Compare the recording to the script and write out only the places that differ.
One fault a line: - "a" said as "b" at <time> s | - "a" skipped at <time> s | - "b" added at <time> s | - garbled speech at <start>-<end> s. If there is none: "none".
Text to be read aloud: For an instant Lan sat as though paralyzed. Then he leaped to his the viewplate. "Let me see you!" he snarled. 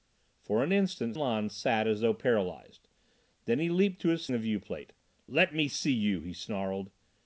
none